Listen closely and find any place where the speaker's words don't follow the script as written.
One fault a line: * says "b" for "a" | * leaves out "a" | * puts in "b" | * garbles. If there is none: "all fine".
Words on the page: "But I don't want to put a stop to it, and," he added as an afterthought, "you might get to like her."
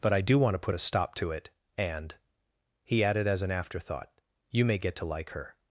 * says "do" for "don't"
* says "may" for "might"